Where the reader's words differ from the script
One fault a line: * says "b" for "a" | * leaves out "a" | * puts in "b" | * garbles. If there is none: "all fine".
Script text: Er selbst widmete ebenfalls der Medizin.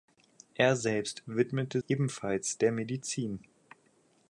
all fine